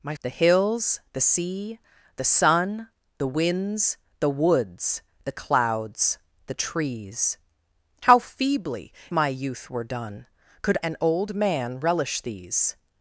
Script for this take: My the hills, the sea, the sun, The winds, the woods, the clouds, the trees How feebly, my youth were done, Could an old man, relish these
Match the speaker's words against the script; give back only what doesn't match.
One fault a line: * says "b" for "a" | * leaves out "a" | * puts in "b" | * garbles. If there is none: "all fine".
all fine